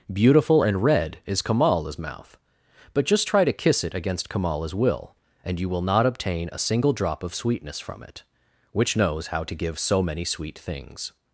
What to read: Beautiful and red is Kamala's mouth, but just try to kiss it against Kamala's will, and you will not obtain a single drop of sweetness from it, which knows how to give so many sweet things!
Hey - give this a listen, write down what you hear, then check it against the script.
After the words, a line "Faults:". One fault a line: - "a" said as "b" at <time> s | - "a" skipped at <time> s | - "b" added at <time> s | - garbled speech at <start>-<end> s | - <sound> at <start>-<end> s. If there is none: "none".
Beautiful and red is Kamala's mouth, but just try to kiss it against Kamala's will, and you will not obtain a single drop of sweetness from it, which knows how to give so many sweet things!
Faults:
none